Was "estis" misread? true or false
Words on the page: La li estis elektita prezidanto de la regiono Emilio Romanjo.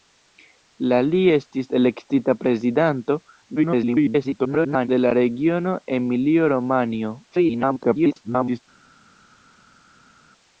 false